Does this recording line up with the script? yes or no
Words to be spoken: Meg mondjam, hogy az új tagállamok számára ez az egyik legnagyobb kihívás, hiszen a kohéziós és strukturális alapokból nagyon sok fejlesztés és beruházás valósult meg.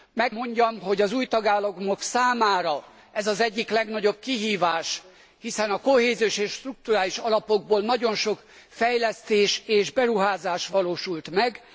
yes